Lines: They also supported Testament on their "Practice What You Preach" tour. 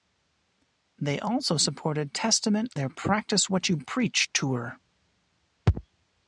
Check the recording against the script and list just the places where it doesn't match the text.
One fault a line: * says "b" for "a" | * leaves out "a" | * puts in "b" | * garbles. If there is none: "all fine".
* leaves out "on"